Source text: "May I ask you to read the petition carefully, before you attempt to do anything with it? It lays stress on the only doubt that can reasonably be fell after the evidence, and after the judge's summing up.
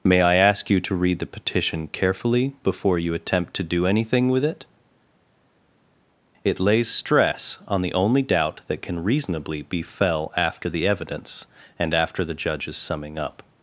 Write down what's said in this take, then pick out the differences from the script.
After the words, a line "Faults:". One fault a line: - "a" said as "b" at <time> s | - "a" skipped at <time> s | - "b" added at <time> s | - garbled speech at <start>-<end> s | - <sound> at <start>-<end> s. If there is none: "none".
"May I ask you to read the petition carefully, before you attempt to do anything with it? It lays stress on the only doubt that can reasonably be fell after the evidence, and after the judge's summing up.
Faults:
none